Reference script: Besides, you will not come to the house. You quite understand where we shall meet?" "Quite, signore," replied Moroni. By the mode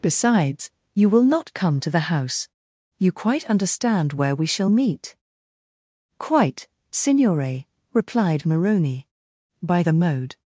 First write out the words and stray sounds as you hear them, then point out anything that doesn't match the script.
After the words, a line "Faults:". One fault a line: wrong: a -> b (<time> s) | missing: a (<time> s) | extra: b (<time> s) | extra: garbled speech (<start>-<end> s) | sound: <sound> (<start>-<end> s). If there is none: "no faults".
Besides, you will not come to the house. You quite understand where we shall meet?" "Quite, signore," replied Moroni. By the mode
Faults:
no faults